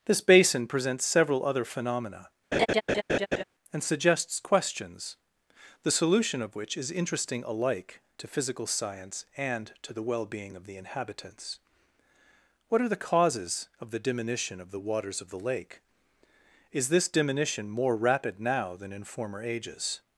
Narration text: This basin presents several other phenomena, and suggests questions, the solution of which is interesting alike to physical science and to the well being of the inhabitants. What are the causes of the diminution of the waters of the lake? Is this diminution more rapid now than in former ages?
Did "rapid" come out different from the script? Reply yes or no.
no